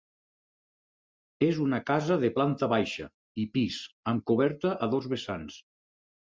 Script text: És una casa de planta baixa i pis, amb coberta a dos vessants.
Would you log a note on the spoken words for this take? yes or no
no